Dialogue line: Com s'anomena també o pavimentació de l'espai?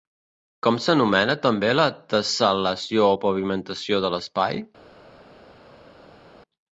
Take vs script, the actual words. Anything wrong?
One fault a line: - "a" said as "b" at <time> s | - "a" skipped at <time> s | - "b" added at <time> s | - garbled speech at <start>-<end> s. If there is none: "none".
- "la tessel·lació" added at 1.8 s